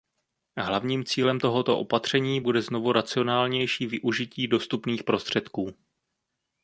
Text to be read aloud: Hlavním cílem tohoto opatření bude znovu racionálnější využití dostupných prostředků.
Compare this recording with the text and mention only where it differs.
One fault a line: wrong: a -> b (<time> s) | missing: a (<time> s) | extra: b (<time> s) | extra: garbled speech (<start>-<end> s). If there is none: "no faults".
no faults